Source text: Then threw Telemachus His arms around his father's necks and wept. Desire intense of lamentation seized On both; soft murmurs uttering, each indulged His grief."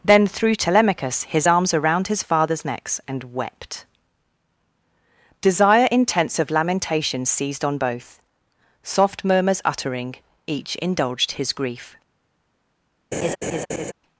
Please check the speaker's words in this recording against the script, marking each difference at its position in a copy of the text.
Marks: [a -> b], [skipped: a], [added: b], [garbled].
Then threw Telemachus His arms around his father's necks and wept. Desire intense of lamentation seized On both; soft murmurs uttering, each indulged His grief."